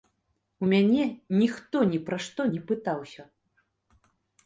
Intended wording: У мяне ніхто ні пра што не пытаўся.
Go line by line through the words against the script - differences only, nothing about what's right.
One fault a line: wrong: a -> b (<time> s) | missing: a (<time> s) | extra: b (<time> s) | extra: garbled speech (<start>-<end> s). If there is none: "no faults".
no faults